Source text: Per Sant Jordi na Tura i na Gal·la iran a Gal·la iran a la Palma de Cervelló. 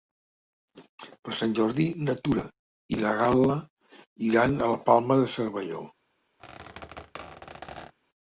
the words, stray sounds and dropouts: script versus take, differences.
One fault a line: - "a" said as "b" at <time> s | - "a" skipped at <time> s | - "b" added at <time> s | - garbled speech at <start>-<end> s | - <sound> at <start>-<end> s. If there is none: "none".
- "Gal·la iran a" skipped at 4.7 s
- squeak at 6.4-7.9 s